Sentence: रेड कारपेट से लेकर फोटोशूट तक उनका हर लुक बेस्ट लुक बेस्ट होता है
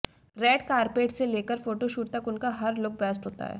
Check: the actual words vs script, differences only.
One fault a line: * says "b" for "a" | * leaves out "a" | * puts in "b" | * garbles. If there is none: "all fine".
* leaves out "लुक बेस्ट"